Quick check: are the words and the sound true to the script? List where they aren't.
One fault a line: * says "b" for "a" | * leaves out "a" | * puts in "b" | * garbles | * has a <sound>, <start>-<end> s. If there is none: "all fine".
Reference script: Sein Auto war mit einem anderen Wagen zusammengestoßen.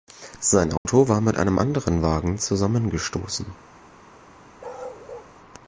* has a dropout, 0.8-0.9 s
* has a bark, 4.6-5.3 s